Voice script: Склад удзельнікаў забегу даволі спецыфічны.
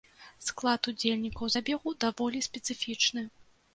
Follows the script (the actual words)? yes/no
yes